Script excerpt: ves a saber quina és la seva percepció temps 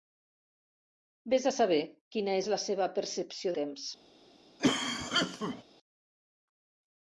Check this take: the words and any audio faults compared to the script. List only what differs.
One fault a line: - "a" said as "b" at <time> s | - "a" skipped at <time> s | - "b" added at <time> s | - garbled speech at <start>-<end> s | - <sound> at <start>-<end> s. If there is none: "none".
- cough at 4.6-5.6 s